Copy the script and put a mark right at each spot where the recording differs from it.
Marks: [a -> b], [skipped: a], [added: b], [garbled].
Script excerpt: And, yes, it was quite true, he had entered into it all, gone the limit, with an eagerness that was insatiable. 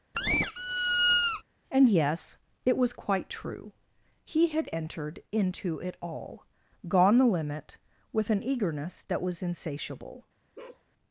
And, yes, it was quite true, he had entered into it all, gone the limit, with an eagerness that was insatiable.